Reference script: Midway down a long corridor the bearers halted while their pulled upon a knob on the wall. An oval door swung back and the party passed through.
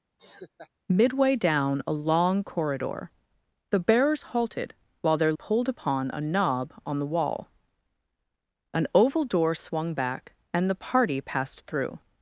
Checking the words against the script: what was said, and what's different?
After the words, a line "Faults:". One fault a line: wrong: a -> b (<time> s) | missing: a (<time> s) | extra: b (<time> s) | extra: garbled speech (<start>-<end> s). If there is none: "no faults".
Midway down a long corridor the bearers halted while their pulled upon a knob on the wall. An oval door swung back and the party passed through.
Faults:
no faults